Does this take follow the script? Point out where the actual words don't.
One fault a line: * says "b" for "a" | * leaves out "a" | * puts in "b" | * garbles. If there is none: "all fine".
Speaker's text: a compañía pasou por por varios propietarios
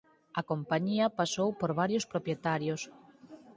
* leaves out "por"